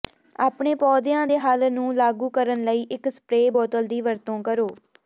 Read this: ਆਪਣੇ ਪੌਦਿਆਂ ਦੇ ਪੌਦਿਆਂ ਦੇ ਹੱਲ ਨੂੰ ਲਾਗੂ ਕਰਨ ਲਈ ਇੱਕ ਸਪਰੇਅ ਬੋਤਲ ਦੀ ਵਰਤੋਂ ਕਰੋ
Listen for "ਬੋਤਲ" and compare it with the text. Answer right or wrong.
right